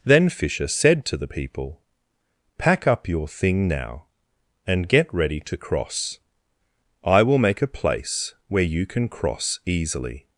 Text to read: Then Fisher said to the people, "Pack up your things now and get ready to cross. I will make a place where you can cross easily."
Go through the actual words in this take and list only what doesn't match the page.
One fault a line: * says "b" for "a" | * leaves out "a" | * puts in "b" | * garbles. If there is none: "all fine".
* says "thing" for "things"